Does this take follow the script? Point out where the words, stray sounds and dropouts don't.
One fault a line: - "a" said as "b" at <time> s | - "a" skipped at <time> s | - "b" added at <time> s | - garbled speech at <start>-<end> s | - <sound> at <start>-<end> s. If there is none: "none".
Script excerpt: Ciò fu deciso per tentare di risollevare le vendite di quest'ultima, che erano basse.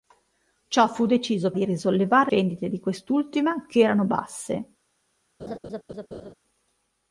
- "per tentare" skipped at 1.5 s
- "le" skipped at 2.3 s
- laugh at 5.4-6.3 s